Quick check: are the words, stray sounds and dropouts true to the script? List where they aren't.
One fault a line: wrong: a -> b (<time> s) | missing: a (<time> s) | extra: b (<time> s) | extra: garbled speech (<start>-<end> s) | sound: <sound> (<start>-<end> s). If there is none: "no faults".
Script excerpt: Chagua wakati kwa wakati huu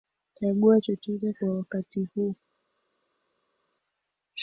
wrong: wakati -> chochote (0.8 s)